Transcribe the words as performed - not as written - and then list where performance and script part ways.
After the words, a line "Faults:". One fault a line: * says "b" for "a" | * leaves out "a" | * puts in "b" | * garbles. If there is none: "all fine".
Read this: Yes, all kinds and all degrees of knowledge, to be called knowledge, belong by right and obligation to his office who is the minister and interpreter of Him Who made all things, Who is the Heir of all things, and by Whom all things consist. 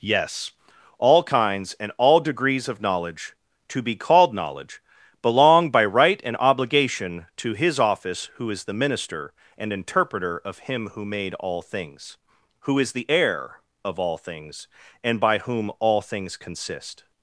Yes, all kinds and all degrees of knowledge, to be called knowledge, belong by right and obligation to his office who is the minister and interpreter of Him Who made all things, Who is the Heir of all things, and by Whom all things consist.
Faults:
all fine